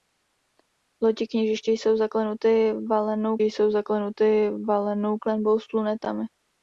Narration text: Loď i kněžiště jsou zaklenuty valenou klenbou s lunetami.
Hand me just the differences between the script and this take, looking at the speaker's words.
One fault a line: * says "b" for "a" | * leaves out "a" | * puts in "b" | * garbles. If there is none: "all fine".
* puts in "jsou zaklenuty valenou"